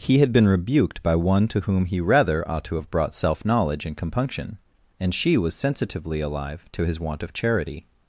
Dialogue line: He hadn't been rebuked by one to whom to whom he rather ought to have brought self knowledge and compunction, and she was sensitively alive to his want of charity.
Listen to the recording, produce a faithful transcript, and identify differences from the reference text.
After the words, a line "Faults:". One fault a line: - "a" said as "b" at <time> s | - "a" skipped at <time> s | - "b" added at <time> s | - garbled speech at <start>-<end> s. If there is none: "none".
He had been rebuked by one to whom he rather ought to have brought self knowledge and compunction, and she was sensitively alive to his want of charity.
Faults:
- "hadn't" said as "had" at 0.2 s
- "to whom" skipped at 1.9 s